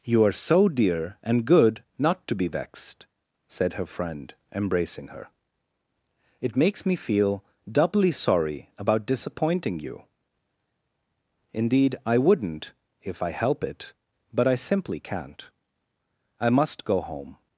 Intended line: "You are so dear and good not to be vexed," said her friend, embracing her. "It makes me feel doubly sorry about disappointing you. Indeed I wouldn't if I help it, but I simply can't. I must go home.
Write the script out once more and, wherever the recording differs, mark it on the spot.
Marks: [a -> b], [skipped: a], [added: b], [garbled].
"You are so dear and good not to be vexed," said her friend, embracing her. "It makes me feel doubly sorry about disappointing you. Indeed I wouldn't if I help it, but I simply can't. I must go home.